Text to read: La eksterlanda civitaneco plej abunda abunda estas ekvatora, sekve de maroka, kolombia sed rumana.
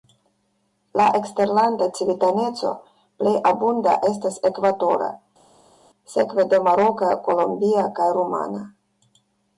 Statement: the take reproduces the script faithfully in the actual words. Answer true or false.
false